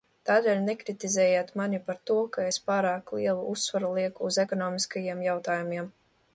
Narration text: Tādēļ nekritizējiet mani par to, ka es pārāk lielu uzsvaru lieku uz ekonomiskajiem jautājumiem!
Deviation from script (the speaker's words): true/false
false